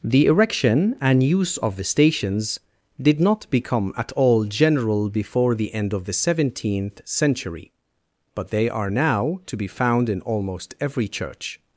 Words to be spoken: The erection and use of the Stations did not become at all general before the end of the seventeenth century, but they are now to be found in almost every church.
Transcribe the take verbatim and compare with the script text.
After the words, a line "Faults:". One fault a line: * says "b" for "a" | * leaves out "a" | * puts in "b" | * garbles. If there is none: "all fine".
The erection and use of the Stations did not become at all general before the end of the seventeenth century, but they are now to be found in almost every church.
Faults:
all fine